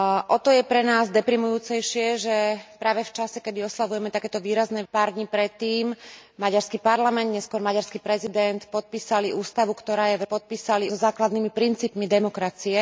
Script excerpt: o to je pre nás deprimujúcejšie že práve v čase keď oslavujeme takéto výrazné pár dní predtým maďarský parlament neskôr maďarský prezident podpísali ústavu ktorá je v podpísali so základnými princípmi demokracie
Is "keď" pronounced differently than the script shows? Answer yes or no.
no